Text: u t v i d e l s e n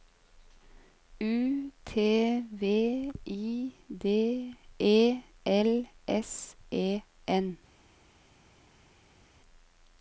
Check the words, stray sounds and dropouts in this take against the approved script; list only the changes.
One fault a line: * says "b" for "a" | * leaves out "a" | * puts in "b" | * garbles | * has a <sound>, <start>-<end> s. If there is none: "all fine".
all fine